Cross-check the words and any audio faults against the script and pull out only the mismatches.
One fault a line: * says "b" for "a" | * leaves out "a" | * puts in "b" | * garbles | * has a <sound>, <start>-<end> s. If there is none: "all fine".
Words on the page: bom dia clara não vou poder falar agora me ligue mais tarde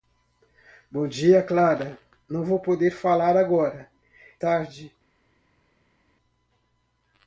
* leaves out "me ligue mais"